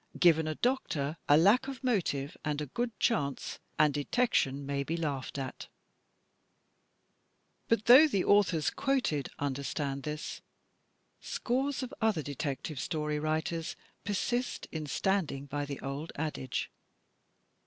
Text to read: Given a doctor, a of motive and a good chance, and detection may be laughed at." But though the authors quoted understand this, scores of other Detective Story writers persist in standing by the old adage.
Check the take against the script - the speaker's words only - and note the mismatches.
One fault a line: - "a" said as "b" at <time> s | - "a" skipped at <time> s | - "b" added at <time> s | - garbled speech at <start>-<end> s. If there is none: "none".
- "lack" added at 1.4 s